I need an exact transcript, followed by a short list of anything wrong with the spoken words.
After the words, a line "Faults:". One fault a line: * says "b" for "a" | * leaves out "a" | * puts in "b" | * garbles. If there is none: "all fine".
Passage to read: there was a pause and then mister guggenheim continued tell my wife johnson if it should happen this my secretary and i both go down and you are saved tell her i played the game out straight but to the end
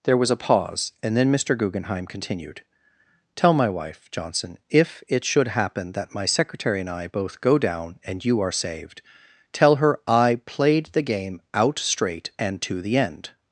there was a pause and then mister guggenheim continued tell my wife johnson if it should happen that my secretary and i both go down and you are saved tell her i played the game out straight and to the end
Faults:
* says "that" for "this"
* says "and" for "but"